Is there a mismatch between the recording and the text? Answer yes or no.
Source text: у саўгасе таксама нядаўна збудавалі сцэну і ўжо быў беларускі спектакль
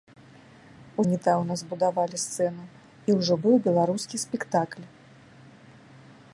yes